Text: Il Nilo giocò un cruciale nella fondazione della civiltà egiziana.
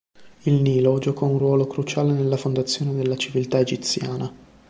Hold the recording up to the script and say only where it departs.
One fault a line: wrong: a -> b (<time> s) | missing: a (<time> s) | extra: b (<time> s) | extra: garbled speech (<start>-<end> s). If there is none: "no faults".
extra: ruolo (1.4 s)